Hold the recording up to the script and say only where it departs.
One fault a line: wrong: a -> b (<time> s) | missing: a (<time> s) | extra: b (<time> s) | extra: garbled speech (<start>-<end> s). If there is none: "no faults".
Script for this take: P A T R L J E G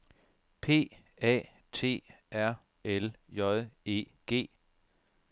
no faults